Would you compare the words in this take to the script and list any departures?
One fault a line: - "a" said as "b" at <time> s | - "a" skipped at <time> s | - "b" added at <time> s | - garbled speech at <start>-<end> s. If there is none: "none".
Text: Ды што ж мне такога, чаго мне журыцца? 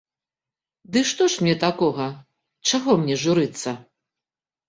none